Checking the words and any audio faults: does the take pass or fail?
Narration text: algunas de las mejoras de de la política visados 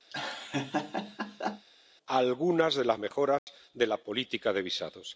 fail